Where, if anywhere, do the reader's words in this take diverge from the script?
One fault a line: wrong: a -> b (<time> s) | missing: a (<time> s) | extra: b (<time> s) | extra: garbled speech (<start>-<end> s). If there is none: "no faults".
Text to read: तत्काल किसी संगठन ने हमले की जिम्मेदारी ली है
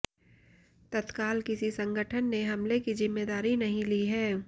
extra: नहीं (3.6 s)